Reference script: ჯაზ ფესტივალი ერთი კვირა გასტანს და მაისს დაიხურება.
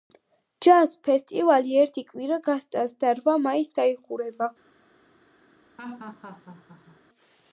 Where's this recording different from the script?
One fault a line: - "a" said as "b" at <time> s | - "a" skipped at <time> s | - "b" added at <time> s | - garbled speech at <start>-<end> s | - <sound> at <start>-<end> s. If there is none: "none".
- "რვა" added at 3.2 s
- laugh at 5.8-7.0 s